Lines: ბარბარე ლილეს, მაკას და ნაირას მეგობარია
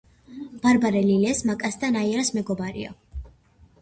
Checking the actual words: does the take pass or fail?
pass